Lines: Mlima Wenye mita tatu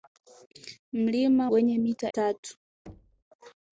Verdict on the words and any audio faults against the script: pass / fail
fail